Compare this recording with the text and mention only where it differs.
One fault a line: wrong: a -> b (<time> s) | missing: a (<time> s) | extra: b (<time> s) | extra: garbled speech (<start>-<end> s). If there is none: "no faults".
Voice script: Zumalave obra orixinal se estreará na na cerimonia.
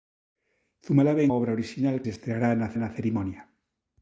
no faults